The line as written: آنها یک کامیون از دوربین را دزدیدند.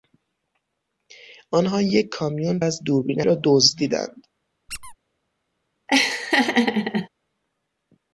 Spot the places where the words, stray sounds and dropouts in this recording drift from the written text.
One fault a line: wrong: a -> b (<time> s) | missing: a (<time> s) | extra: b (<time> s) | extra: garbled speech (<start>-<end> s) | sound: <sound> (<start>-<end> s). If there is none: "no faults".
sound: squeak (4.7-4.9 s)
sound: laugh (5.9-7.1 s)